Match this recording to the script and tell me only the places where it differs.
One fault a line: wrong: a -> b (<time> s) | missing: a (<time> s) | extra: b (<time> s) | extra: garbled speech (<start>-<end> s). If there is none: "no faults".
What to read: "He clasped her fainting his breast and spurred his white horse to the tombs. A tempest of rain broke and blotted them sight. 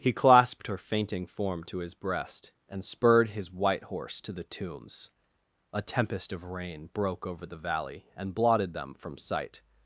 extra: form to (1.3 s)
extra: over the valley (7.3 s)
extra: from (8.9 s)